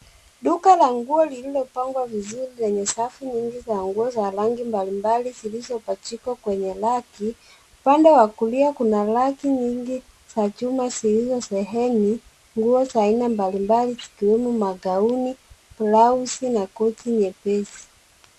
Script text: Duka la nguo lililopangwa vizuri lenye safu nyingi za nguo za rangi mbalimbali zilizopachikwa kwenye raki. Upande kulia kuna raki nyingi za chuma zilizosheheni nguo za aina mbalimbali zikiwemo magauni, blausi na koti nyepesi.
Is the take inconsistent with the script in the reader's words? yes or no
yes